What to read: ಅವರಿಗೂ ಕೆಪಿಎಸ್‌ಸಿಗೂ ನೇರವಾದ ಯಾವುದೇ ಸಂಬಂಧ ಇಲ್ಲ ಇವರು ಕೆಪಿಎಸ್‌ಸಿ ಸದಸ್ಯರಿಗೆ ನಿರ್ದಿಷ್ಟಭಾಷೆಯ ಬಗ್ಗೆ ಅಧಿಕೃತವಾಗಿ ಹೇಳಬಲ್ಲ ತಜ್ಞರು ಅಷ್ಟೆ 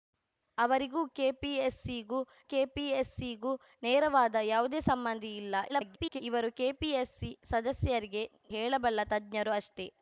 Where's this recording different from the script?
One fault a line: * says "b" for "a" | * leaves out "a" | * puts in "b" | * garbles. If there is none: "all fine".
* puts in "ಕೆಪಿಎಸ್‌ಸಿಗೂ"
* garbles
* leaves out "ನಿರ್ದಿಷ್ಟಭಾಷೆಯ ಬಗ್ಗೆ ಅಧಿಕೃತವಾಗಿ"